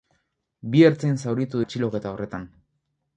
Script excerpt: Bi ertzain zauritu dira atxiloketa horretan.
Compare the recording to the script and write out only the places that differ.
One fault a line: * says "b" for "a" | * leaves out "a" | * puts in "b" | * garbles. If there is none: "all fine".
* leaves out "dira"